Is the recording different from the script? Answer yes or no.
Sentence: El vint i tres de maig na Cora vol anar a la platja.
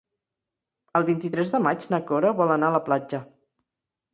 no